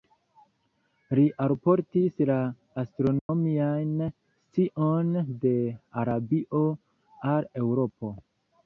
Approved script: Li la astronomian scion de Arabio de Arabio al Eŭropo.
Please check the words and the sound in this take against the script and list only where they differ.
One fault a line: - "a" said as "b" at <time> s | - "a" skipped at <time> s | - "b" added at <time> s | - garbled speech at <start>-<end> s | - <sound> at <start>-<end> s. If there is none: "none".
- "alportis" added at 1.4 s
- dropout at 3.2-3.3 s
- "de Arabio" skipped at 6.7 s